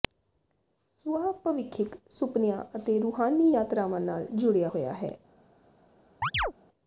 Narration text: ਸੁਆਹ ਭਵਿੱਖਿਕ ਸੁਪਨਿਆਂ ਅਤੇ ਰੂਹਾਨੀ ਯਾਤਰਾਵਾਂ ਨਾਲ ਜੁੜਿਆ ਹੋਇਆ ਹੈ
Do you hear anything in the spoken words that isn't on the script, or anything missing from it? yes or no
no